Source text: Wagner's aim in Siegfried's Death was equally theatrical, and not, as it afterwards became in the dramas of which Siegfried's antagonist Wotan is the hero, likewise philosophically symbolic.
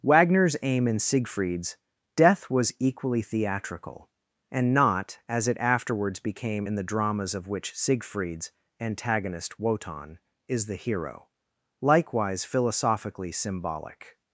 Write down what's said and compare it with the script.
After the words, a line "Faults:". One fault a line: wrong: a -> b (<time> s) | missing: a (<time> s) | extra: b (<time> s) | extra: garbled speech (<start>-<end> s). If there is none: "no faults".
Wagner's aim in Siegfried's Death was equally theatrical, and not, as it afterwards became in the dramas of which Siegfried's antagonist Wotan is the hero, likewise philosophically symbolic.
Faults:
no faults